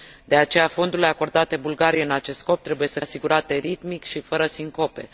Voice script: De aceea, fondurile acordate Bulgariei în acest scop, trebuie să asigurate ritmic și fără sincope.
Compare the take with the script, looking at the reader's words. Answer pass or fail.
pass